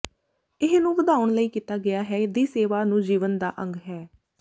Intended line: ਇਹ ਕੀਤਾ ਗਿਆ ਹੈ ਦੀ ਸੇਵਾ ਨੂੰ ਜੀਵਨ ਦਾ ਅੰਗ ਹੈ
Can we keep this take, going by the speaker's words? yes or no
no